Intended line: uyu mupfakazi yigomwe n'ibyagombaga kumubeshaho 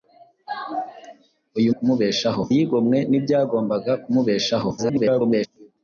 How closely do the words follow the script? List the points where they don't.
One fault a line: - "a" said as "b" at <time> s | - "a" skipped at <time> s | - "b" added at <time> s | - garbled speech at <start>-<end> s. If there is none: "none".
- "mupfakazi" said as "kumubeshaho" at 1.8 s
- garbled speech at 4.8-5.5 s